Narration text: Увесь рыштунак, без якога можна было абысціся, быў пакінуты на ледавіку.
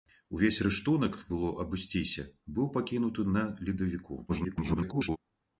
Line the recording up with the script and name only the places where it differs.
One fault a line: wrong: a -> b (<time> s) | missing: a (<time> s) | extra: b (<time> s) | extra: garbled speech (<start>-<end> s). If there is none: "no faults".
missing: без якога можна (1.2 s)
extra: garbled speech (4.3-5.2 s)